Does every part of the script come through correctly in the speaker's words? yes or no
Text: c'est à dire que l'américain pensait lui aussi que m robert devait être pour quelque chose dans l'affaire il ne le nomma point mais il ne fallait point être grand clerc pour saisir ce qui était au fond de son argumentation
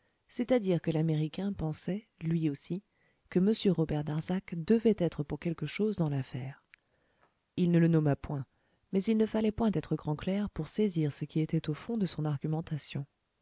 no